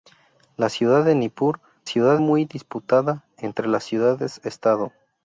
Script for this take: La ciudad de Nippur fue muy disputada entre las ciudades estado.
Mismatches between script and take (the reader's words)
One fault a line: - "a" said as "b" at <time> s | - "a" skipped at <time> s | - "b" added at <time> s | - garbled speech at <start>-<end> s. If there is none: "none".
- "fue" said as "ciudad" at 1.8 s